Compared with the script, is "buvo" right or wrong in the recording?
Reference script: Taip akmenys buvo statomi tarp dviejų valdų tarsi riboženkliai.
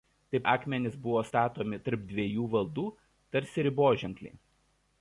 right